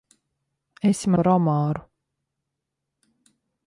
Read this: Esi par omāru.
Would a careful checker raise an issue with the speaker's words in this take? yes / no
no